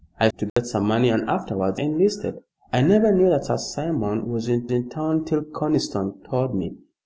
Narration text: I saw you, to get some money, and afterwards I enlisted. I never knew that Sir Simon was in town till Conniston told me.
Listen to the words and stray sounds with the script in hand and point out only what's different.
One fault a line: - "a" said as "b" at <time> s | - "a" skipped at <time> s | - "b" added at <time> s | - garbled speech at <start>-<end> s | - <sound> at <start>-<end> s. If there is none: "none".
- "saw you" skipped at 0.3 s
- dropout at 0.5-0.6 s
- "I" skipped at 1.8 s
- "in" added at 4.7 s